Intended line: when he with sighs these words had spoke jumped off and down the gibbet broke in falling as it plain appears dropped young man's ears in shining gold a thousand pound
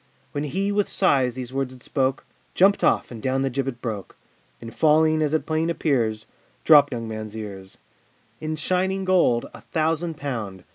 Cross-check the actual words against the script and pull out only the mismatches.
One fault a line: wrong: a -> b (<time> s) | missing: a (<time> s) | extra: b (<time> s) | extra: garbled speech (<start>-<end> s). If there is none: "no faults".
no faults